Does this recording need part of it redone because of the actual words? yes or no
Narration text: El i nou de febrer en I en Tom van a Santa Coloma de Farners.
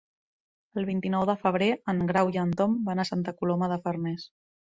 yes